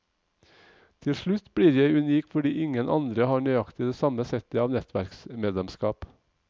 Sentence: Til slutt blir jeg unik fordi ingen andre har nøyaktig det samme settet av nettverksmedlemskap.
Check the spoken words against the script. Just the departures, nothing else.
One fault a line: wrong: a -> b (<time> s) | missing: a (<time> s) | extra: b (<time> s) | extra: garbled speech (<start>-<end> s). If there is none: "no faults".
no faults